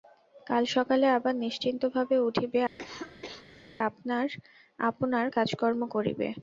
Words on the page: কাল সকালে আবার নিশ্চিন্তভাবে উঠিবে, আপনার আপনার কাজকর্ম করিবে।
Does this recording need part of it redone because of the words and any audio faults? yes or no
yes